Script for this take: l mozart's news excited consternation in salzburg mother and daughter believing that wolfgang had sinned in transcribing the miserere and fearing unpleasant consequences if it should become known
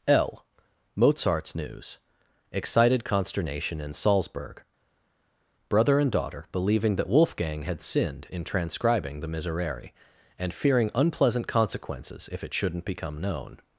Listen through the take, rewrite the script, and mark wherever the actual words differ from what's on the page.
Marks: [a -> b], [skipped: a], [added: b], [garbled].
l mozart's news excited consternation in salzburg [mother -> brother] and daughter believing that wolfgang had sinned in transcribing the miserere and fearing unpleasant consequences if it [should -> shouldn't] become known